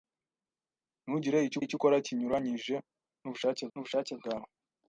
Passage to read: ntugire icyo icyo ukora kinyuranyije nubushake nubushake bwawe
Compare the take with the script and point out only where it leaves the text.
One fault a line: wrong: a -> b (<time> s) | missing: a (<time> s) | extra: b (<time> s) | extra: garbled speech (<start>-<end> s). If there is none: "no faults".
no faults